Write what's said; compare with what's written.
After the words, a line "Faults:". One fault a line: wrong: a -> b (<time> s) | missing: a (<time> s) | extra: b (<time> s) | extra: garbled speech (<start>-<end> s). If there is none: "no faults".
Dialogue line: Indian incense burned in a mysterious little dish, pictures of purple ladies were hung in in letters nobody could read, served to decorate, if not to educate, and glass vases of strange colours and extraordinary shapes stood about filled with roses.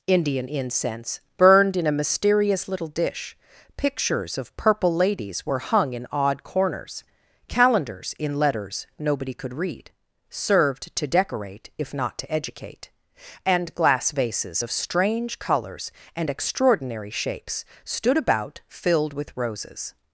Indian incense burned in a mysterious little dish, pictures of purple ladies were hung in odd corners, calendars in letters nobody could read, served to decorate, if not to educate, and glass vases of strange colours and extraordinary shapes stood about filled with roses.
Faults:
extra: odd corners calendars (6.1 s)